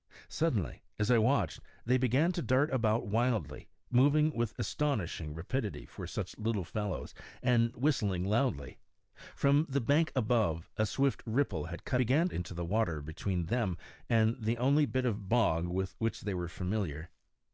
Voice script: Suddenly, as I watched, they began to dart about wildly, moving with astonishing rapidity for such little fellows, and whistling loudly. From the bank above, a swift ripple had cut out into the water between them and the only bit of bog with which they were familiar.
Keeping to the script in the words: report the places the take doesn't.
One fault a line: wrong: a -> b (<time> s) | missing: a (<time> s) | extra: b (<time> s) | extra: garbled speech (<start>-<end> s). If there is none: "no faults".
wrong: out -> began (12.0 s)